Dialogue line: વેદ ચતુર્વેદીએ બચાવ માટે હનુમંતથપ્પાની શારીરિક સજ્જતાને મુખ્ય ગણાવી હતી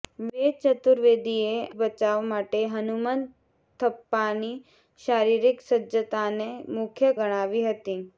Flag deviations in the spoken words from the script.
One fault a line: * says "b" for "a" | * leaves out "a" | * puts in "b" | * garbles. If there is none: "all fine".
all fine